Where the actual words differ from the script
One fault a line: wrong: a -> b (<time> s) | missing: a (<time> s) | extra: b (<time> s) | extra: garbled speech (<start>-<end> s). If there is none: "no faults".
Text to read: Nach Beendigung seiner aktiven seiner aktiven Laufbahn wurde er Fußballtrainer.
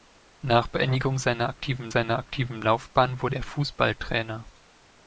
no faults